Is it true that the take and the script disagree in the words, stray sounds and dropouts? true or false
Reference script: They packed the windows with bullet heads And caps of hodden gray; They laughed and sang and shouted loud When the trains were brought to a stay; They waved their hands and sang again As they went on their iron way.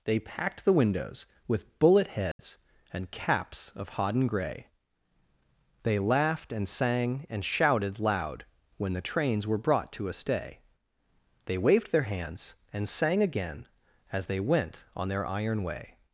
true